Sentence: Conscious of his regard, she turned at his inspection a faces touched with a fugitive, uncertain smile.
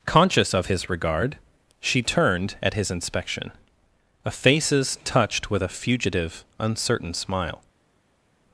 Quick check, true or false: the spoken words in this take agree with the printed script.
true